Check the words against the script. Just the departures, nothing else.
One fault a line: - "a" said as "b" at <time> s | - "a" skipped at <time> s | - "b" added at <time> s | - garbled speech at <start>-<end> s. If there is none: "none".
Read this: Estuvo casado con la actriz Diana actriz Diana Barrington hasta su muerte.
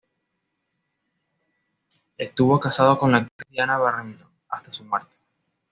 - "actriz Diana" skipped at 3.8 s